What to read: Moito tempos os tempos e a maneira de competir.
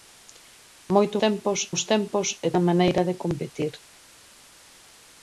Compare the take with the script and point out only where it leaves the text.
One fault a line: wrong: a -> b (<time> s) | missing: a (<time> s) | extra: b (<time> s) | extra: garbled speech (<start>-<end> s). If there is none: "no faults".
no faults